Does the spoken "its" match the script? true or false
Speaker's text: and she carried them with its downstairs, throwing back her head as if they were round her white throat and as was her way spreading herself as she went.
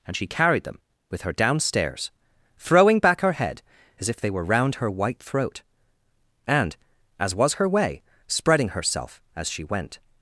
false